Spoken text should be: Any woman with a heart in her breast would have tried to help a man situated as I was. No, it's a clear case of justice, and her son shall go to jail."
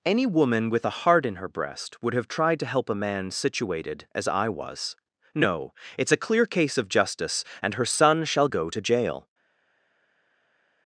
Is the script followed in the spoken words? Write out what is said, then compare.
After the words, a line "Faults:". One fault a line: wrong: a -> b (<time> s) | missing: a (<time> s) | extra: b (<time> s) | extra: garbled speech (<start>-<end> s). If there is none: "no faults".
Any woman with a heart in her breast would have tried to help a man situated as I was. No, it's a clear case of justice, and her son shall go to jail."
Faults:
no faults